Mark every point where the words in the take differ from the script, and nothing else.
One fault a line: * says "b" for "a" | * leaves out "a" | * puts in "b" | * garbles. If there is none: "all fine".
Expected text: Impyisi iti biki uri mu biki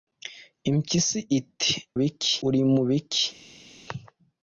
all fine